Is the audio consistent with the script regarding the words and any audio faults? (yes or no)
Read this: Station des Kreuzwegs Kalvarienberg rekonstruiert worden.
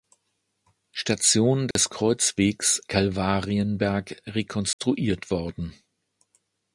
no